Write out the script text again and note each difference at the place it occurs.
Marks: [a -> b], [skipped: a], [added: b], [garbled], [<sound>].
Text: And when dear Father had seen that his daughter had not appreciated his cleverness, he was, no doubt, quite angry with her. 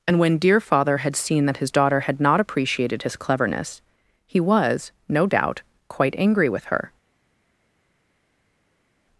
And when dear Father had seen that his daughter had not appreciated his cleverness, he was, no doubt, quite angry with her.